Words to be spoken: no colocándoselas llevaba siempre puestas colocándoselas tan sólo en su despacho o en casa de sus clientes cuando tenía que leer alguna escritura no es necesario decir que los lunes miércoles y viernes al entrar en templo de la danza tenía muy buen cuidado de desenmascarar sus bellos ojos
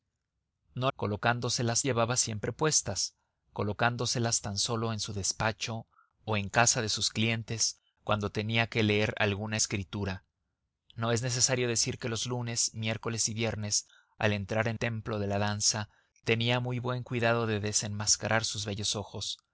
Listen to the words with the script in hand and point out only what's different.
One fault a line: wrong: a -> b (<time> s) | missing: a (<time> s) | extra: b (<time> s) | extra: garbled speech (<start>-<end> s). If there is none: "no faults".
no faults